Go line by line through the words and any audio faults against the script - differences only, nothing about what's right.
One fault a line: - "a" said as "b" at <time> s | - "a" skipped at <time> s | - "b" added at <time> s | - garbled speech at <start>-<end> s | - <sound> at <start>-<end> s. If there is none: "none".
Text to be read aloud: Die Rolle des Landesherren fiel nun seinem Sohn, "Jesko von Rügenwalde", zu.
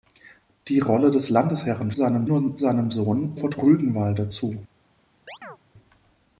- "fiel" said as "seinem" at 1.9 s
- "Jesko" skipped at 3.4 s
- chirp at 5.3-5.6 s